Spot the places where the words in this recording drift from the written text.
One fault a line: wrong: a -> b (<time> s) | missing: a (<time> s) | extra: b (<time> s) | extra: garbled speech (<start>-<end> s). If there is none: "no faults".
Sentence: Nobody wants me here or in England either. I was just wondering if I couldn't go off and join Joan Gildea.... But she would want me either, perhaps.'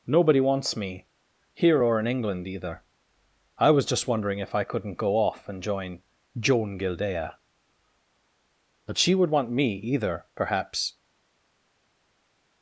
no faults